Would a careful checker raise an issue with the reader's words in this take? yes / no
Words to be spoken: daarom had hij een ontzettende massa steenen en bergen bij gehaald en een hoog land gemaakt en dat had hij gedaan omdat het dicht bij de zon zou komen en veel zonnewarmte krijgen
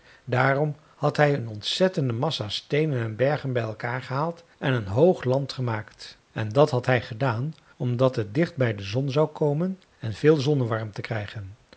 yes